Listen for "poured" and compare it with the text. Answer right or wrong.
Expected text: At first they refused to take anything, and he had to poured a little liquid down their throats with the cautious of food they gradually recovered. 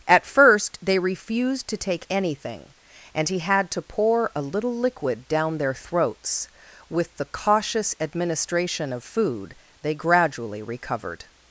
wrong